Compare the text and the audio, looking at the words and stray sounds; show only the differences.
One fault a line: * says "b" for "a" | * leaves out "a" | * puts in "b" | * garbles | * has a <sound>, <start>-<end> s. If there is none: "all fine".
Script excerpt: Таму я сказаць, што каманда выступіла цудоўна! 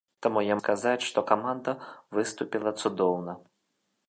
all fine